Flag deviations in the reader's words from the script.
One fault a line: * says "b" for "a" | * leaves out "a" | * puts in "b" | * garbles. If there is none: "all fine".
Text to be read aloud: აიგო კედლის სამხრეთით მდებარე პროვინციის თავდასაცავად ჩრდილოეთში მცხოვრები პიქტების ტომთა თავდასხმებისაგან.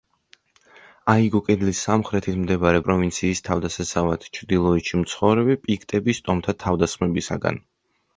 all fine